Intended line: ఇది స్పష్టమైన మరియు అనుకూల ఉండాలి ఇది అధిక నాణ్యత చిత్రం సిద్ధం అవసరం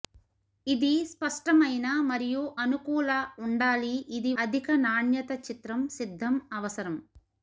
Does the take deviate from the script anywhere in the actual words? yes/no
no